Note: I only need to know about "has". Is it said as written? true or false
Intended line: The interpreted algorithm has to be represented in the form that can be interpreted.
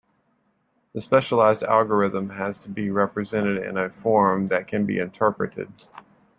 true